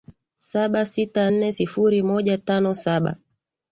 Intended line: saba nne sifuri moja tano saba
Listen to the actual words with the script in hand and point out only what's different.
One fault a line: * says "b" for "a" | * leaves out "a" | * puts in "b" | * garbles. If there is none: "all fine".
* puts in "sita"